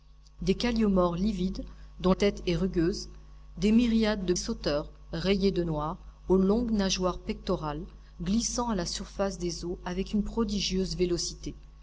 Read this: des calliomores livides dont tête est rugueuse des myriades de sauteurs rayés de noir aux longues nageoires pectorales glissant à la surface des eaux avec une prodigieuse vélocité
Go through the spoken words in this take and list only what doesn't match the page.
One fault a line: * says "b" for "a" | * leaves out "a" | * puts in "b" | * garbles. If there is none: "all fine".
all fine